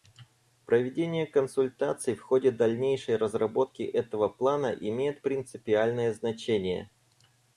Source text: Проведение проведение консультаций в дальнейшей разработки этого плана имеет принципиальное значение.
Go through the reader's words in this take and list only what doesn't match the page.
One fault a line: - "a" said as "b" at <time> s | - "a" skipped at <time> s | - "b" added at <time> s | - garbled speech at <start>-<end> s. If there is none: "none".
- "проведение" skipped at 1.3 s
- "ходе" added at 2.2 s